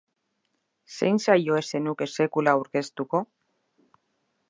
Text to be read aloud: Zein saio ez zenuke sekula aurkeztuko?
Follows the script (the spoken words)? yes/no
yes